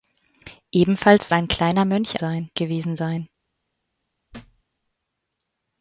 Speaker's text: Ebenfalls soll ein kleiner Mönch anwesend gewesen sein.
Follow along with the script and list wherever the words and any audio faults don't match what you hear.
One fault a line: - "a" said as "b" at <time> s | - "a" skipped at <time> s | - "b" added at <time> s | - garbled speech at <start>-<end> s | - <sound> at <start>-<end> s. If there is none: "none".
- "soll" skipped at 1.3 s
- "anwesend" said as "sein" at 2.2 s
- thud at 4.3-4.6 s